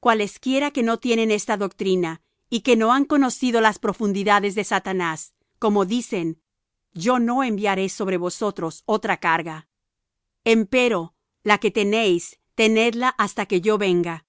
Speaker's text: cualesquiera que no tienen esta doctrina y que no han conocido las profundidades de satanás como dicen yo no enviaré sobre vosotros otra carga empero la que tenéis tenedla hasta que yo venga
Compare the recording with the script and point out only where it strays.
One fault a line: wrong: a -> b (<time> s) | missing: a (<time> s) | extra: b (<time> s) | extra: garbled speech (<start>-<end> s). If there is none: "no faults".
no faults